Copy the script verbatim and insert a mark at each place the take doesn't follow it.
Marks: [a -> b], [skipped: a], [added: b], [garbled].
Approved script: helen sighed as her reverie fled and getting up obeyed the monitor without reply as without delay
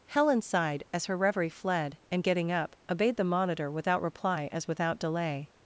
helen sighed as her reverie fled and getting up obeyed the monitor without reply as without delay